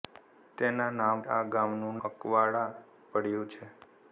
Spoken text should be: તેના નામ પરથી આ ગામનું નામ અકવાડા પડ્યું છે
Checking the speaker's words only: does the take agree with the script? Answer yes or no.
no